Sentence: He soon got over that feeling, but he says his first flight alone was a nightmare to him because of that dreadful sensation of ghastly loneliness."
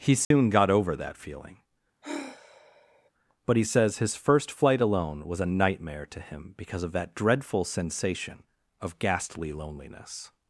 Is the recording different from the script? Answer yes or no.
no